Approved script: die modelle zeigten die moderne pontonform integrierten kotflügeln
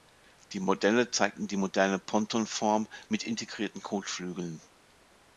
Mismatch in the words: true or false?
true